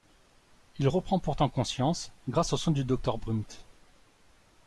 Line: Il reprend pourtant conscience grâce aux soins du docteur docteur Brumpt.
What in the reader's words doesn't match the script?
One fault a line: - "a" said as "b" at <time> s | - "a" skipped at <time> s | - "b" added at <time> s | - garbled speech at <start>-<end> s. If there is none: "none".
- "docteur" skipped at 3.2 s